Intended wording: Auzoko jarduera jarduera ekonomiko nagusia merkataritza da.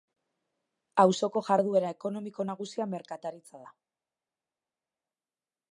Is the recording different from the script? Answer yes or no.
yes